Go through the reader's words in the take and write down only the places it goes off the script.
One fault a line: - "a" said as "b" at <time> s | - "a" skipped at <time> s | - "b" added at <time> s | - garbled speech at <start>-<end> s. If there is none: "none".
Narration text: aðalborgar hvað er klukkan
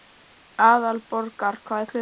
none